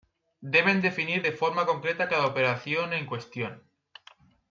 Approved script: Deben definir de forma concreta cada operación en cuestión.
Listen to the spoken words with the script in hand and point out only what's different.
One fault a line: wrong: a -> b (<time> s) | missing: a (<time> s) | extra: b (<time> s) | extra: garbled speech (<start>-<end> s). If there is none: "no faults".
no faults